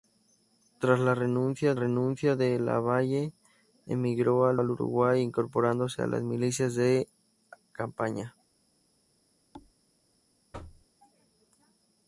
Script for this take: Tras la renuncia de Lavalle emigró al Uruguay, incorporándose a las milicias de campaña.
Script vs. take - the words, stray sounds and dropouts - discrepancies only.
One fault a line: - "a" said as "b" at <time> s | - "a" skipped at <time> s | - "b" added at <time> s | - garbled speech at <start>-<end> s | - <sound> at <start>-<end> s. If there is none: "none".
- "renuncia" added at 1.7 s
- "al" added at 4.5 s
- thud at 9.5-9.7 s
- thud at 10.5-10.9 s